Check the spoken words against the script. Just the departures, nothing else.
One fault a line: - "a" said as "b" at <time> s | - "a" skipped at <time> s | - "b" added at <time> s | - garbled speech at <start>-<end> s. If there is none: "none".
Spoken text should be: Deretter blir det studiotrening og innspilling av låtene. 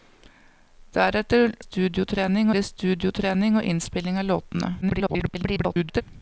- "blir" said as "studiotrening" at 1.6 s
- garbled speech at 4.8-6.0 s